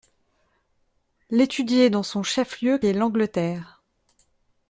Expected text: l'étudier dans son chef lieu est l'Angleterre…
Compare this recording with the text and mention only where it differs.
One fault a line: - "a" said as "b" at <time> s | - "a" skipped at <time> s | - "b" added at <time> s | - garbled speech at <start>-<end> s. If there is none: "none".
none